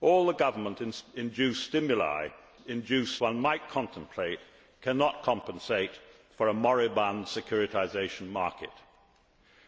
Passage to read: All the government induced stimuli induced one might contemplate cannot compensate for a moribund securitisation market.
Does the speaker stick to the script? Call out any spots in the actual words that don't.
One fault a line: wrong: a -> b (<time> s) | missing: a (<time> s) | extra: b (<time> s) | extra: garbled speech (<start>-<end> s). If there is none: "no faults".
no faults